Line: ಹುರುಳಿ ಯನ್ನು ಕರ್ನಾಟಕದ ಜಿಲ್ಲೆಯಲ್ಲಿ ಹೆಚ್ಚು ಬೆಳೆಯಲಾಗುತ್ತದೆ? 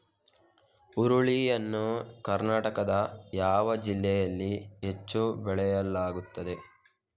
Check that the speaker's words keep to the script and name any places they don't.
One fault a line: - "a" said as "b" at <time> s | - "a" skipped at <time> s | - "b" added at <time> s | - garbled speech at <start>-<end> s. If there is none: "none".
- "ಯಾವ" added at 3.3 s